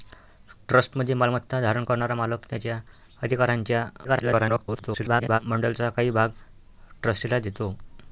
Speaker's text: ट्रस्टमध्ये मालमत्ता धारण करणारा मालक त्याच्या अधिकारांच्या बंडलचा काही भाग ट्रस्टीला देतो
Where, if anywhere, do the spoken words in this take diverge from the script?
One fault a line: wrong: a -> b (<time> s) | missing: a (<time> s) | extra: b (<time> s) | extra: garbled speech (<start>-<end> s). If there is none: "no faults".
extra: garbled speech (4.0-5.4 s)